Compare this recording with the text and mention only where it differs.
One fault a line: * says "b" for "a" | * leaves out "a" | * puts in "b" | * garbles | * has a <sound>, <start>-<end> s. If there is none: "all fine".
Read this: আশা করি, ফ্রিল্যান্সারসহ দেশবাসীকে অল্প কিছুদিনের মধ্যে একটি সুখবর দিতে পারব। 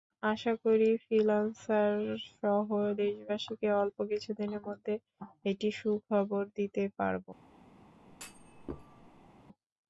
* has a thud, 8.1-9.3 s